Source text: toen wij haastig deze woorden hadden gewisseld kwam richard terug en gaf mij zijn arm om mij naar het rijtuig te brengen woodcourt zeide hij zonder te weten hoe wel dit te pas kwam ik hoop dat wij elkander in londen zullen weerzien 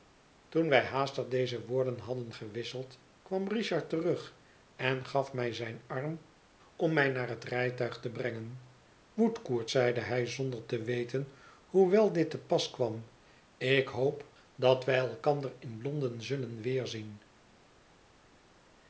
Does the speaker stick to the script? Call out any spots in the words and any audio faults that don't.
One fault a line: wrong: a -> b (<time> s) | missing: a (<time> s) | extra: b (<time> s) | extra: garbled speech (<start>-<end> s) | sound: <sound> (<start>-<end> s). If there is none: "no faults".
no faults